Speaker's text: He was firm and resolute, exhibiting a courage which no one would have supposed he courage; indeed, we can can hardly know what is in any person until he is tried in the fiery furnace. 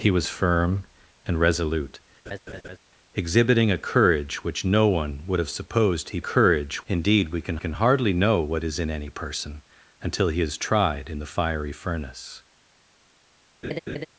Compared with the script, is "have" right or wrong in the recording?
right